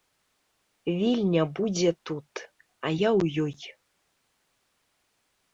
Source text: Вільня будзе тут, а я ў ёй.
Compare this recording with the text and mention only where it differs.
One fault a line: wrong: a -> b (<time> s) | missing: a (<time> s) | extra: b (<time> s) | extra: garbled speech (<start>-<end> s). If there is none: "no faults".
no faults